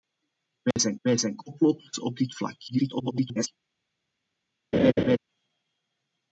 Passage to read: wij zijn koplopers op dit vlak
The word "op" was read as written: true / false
true